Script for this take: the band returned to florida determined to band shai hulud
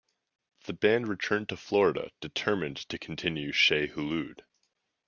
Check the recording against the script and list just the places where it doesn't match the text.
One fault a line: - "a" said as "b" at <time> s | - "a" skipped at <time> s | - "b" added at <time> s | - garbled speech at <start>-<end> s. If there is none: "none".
- "band" said as "continue" at 3.0 s